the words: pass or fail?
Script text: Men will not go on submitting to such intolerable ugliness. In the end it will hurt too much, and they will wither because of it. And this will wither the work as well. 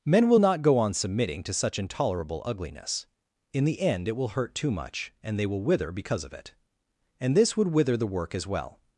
fail